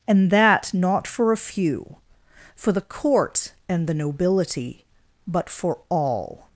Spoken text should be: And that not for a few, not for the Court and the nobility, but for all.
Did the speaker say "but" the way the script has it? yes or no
yes